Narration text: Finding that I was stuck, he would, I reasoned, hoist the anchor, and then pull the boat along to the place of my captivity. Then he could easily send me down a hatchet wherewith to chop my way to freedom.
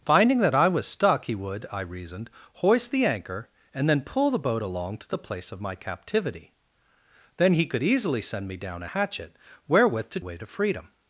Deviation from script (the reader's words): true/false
true